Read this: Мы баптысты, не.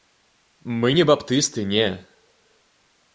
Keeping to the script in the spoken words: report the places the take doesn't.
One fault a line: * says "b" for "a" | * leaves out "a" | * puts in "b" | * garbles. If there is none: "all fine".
* puts in "не"